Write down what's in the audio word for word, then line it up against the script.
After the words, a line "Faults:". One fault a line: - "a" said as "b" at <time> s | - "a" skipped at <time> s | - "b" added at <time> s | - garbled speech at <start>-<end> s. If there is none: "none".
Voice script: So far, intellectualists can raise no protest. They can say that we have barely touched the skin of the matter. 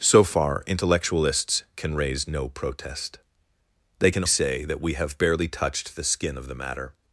So far, intellectualists can raise no protest. They can say that we have barely touched the skin of the matter.
Faults:
none